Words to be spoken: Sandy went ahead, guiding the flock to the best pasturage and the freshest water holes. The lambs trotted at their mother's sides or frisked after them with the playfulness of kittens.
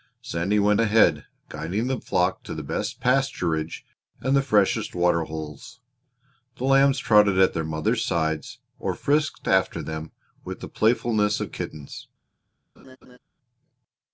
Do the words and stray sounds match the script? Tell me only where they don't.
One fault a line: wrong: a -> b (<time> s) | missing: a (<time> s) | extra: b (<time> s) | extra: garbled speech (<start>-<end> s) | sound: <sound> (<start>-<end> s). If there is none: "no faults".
sound: laugh (12.8-13.2 s)